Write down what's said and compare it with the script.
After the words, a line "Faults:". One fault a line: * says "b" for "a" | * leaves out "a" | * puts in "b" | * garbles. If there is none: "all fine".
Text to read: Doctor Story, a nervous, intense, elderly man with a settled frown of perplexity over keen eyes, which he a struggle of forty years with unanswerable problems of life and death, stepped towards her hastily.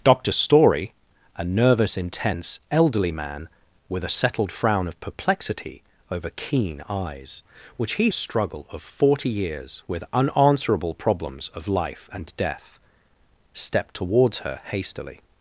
Doctor Story, a nervous, intense, elderly man with a settled frown of perplexity over keen eyes, which he a struggle of forty years with unanswerable problems of life and death, stepped towards her hastily.
Faults:
all fine